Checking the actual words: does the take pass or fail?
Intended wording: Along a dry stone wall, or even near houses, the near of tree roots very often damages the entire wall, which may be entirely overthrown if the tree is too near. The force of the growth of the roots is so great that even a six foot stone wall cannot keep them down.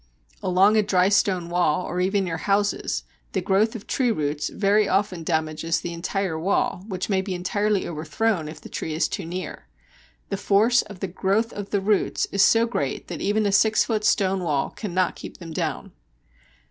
fail